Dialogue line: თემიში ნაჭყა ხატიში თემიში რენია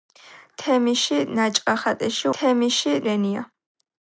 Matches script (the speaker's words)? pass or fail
pass